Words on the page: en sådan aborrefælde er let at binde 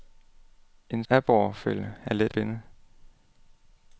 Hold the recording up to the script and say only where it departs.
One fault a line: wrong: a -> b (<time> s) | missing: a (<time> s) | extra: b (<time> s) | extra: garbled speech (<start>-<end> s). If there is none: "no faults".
missing: sådan (1.0 s)
missing: at (2.3 s)